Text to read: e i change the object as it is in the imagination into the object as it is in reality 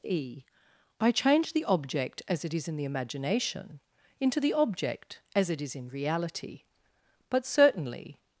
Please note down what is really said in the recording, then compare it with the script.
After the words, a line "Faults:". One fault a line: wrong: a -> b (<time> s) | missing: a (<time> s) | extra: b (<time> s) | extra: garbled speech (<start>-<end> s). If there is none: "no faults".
e i change the object as it is in the imagination into the object as it is in reality but certainly
Faults:
extra: but certainly (7.3 s)